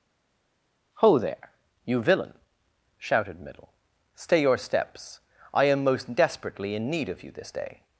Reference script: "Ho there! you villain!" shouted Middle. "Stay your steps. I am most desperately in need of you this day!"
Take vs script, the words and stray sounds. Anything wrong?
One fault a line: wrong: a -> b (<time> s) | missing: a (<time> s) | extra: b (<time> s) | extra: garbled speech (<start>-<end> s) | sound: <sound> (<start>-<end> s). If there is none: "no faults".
no faults